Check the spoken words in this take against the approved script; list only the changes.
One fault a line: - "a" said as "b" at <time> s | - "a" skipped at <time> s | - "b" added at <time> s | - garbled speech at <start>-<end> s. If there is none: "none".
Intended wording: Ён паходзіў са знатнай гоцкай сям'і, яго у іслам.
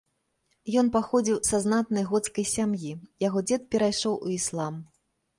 - "дзед перайшоў" added at 3.5 s